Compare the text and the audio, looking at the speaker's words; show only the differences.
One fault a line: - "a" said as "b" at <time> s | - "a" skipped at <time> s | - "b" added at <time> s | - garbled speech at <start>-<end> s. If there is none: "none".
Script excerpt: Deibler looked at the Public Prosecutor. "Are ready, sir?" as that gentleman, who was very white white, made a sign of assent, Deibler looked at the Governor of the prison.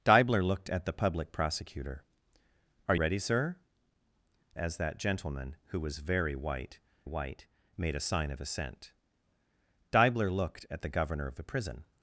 none